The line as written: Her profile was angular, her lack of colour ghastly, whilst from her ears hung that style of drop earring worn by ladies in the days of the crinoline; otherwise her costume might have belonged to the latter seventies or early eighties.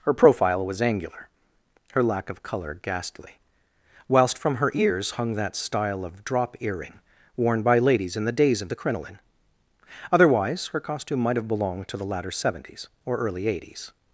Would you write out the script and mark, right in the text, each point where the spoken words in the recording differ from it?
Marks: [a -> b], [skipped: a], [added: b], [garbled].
Her profile was angular, her lack of colour ghastly, whilst from her ears hung that style of drop earring worn by ladies in the days of the crinoline; otherwise her costume might have belonged to the latter seventies or early eighties.